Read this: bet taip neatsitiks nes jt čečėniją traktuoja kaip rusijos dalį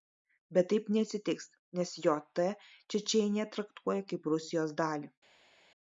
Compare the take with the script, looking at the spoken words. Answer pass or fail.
pass